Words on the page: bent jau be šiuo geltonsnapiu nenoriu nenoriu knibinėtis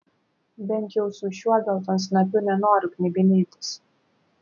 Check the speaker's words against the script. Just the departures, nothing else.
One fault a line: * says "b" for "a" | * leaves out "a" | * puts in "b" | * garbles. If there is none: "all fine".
* says "su" for "be"
* leaves out "nenoriu"